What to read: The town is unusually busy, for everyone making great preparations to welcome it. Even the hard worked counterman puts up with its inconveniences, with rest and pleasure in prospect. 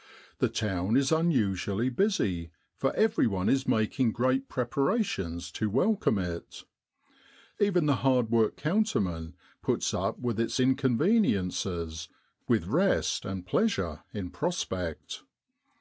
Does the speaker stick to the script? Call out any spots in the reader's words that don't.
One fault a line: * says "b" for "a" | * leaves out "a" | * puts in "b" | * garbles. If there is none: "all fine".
* puts in "is"